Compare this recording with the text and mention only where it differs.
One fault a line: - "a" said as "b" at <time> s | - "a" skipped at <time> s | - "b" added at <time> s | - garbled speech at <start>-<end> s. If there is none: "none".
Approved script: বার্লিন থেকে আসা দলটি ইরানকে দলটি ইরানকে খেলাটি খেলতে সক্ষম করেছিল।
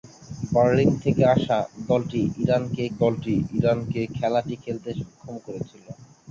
none